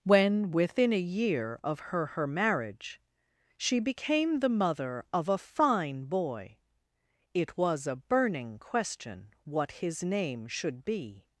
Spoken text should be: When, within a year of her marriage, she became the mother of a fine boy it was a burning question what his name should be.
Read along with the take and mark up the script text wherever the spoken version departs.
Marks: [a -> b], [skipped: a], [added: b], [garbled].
When, within a year of her [added: her] marriage, she became the mother of a fine boy it was a burning question what his name should be.